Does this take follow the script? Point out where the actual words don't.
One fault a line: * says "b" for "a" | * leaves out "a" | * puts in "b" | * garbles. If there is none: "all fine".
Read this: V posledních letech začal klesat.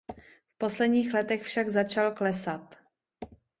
* puts in "však"